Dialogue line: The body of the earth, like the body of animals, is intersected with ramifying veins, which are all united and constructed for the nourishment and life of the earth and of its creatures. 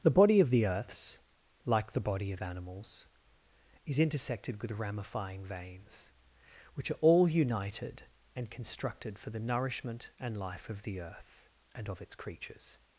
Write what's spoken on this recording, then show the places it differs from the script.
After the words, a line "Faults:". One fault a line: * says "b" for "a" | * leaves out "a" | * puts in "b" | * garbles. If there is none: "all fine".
The body of the earths, like the body of animals, is intersected with ramifying veins, which are all united and constructed for the nourishment and life of the earth and of its creatures.
Faults:
* says "earths" for "earth"